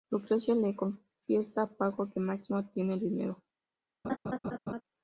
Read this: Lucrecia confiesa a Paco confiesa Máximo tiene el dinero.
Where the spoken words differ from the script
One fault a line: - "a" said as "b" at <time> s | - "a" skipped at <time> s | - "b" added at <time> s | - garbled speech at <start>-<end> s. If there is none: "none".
- "le" added at 0.6 s
- "confiesa" said as "que" at 2.1 s